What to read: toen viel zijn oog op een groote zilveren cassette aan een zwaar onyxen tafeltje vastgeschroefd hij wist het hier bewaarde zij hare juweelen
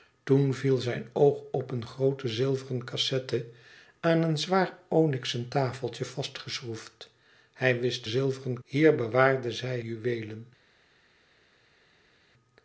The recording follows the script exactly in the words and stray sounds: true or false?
false